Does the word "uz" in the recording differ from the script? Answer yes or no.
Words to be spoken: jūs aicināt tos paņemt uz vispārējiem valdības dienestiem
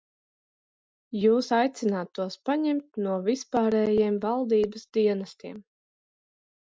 yes